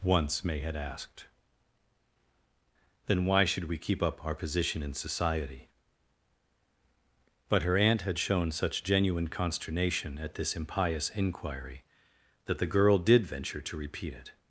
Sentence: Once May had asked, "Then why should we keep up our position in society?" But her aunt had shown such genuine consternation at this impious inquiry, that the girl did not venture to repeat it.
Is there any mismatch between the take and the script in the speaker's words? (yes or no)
yes